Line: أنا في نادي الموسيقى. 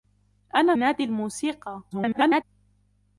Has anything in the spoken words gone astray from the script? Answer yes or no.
yes